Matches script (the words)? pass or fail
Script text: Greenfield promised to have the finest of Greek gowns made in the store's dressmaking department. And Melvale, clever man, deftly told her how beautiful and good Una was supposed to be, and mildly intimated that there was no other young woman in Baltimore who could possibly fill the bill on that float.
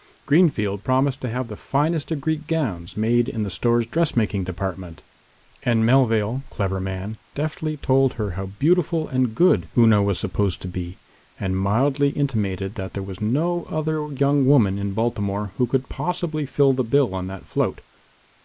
pass